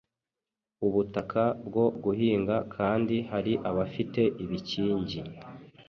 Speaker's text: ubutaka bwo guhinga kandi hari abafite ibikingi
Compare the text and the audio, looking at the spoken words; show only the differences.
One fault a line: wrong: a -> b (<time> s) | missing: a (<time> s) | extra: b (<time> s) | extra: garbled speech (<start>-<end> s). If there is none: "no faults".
no faults